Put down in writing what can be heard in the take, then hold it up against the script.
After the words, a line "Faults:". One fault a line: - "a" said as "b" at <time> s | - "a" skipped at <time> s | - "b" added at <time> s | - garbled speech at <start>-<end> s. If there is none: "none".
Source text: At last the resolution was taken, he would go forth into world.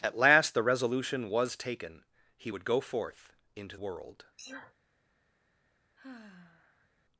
At last the resolution was taken, he would go forth into world.
Faults:
none